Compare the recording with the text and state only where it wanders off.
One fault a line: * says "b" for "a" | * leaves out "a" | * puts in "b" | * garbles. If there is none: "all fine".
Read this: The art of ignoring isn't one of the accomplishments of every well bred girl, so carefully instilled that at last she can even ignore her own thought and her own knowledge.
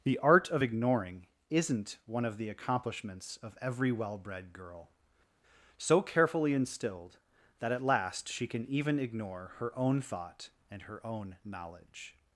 all fine